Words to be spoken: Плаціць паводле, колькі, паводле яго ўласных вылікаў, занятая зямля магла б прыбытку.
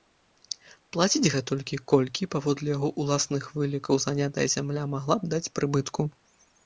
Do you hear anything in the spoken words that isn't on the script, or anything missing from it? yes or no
yes